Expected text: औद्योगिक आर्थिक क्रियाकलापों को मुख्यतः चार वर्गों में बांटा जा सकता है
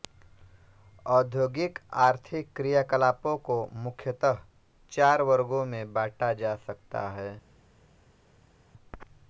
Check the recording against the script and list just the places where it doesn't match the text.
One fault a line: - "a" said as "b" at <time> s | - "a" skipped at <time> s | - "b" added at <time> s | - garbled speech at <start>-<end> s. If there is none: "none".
none